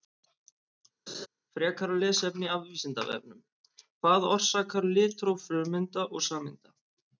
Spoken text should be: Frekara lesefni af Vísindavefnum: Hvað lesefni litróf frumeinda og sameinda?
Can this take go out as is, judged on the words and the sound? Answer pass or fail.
fail